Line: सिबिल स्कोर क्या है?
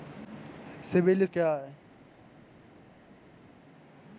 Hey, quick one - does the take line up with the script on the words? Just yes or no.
no